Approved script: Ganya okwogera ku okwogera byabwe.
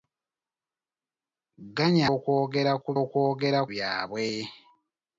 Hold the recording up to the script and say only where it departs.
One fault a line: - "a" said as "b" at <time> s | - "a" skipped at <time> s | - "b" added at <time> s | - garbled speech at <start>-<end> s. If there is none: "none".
none